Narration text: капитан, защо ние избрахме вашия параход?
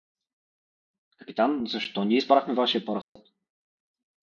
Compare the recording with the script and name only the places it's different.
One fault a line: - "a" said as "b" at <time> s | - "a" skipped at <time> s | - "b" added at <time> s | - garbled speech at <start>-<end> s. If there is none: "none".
none